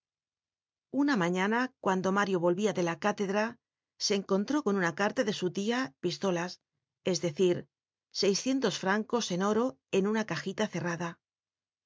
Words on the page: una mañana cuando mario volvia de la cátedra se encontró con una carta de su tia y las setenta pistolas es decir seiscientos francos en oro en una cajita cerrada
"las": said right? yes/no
no